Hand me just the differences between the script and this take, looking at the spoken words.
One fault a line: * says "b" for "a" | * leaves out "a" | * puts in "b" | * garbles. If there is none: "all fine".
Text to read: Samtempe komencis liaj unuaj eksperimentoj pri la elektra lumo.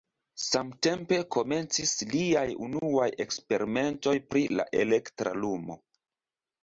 all fine